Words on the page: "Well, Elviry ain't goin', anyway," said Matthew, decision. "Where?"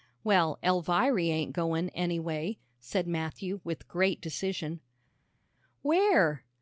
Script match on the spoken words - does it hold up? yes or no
no